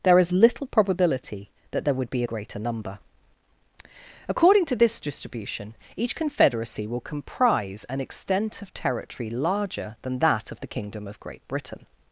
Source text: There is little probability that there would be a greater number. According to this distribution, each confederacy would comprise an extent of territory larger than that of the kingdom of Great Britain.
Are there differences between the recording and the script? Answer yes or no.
yes